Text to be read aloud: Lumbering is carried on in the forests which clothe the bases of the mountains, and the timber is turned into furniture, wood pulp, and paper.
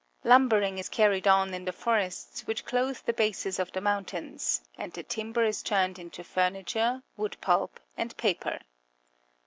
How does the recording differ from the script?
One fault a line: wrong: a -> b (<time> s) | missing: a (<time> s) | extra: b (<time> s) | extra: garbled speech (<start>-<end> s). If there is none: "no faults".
no faults